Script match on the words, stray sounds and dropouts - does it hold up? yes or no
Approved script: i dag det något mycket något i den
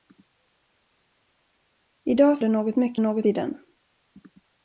yes